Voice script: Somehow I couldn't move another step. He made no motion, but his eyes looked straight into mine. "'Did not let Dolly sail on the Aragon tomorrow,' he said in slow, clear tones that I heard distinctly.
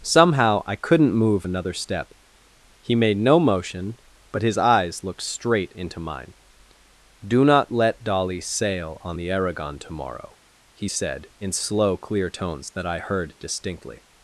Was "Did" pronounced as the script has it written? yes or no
no